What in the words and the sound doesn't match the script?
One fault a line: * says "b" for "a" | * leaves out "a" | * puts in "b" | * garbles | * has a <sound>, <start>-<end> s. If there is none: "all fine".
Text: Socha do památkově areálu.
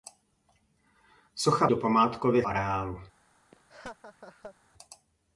* has a laugh, 3.5-4.6 s